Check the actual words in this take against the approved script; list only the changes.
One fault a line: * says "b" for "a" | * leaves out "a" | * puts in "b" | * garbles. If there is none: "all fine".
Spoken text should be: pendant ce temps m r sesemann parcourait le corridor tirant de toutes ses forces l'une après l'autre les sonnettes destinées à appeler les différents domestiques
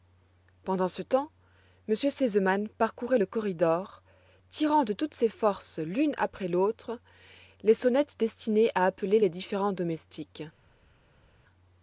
all fine